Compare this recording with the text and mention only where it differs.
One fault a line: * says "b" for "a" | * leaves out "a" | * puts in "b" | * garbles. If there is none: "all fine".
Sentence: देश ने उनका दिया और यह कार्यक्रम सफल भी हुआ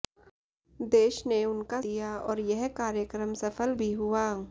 all fine